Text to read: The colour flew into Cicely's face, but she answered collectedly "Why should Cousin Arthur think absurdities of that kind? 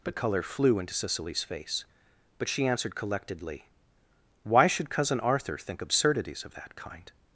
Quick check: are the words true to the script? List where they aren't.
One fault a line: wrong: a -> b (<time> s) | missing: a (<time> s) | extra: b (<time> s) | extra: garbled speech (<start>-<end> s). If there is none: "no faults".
wrong: The colour -> But color (0.0 s)